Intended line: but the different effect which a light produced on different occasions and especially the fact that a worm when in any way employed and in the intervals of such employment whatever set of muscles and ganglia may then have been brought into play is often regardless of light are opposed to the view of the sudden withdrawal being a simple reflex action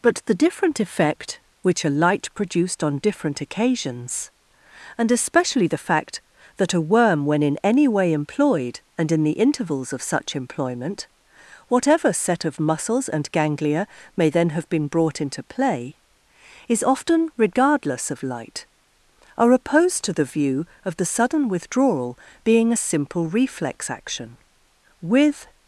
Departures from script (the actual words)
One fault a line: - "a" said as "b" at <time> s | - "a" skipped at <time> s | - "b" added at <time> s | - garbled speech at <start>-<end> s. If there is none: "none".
- "with" added at 25.0 s